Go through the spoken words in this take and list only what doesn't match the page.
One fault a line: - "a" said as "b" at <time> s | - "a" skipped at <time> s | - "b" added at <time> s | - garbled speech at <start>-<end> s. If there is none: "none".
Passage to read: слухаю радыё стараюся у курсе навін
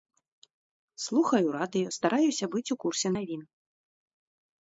- "быць" added at 2.5 s